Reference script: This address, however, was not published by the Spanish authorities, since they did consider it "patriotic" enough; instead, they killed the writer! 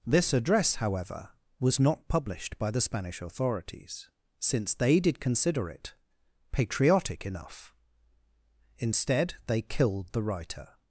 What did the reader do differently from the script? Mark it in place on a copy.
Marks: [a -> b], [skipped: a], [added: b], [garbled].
This address, however, was not published by the Spanish authorities, since they did consider it "patriotic" enough; instead, they killed the writer!